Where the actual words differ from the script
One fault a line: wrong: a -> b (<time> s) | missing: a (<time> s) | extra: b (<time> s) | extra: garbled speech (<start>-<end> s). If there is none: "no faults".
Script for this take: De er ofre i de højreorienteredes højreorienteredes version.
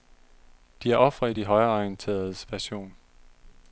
missing: højreorienteredes (2.5 s)